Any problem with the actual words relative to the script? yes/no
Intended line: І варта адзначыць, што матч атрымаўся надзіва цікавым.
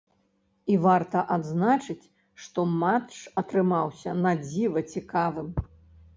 no